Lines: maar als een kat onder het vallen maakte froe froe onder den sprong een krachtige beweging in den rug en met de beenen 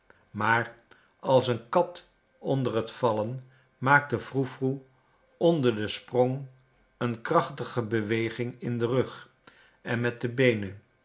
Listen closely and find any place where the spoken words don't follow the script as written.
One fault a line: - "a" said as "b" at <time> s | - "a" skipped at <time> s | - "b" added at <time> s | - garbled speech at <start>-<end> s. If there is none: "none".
none